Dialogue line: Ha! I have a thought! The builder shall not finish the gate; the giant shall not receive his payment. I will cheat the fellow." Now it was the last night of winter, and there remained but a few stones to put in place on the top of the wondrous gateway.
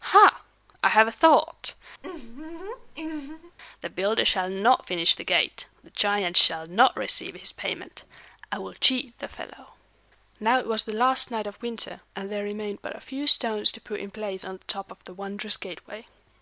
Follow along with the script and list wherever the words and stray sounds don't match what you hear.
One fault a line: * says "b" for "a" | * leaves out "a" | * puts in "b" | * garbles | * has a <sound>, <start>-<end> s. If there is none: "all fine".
* has a laugh, 2.0-3.6 s